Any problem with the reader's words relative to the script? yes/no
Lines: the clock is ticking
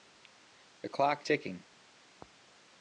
yes